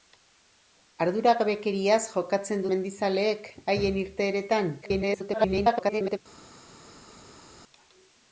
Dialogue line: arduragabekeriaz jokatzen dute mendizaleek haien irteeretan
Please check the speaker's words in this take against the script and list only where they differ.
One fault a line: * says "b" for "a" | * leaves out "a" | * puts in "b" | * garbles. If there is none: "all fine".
* leaves out "dute"
* garbles